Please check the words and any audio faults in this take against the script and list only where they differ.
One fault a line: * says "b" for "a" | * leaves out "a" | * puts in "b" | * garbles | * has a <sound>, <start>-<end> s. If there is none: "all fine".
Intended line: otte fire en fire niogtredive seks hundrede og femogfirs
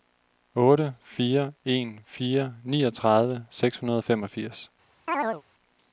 * has a chirp, 5.1-5.4 s